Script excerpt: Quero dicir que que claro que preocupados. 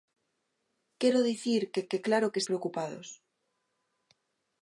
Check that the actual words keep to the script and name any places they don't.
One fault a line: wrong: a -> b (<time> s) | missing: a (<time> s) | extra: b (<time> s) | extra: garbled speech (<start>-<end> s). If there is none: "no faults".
no faults